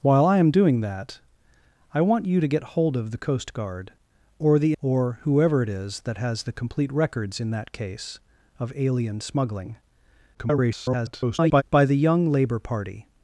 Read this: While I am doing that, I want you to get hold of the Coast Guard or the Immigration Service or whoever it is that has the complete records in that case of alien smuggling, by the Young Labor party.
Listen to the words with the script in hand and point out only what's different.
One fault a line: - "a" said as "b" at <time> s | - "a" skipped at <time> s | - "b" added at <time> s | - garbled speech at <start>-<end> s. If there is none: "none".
- "Immigration Service" skipped at 4.7 s
- garbled speech at 10.3-11.6 s